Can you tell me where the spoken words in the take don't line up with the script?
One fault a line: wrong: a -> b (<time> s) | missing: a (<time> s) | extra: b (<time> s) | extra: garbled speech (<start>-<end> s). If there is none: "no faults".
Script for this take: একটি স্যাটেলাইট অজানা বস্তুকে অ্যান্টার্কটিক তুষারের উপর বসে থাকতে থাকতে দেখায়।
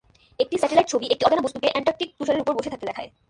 extra: ছবি একটি (0.9 s)
missing: থাকতে (2.9 s)